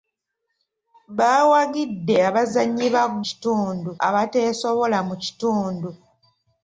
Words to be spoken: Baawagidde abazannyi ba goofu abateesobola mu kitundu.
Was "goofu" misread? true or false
true